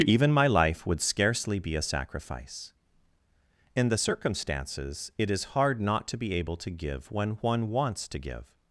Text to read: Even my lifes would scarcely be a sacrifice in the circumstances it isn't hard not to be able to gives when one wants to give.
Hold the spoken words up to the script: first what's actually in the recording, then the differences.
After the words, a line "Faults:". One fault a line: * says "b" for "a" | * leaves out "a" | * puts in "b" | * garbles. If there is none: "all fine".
Even my life would scarcely be a sacrifice in the circumstances it is hard not to be able to give when one wants to give.
Faults:
* says "life" for "lifes"
* says "is" for "isn't"
* says "give" for "gives"